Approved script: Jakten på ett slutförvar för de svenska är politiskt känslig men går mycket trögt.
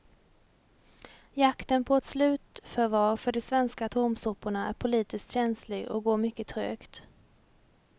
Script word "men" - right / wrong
wrong